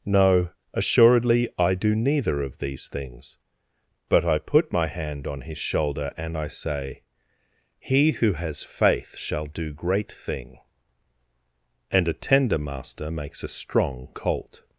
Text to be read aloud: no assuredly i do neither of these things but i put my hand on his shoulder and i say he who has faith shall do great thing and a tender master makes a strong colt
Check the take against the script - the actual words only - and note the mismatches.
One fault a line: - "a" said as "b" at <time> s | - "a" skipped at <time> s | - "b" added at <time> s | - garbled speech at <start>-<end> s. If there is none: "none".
none